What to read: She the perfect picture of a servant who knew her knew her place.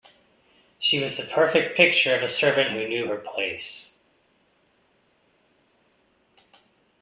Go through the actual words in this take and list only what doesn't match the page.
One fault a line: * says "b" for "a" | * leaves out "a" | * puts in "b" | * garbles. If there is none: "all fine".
* puts in "was"
* leaves out "knew her"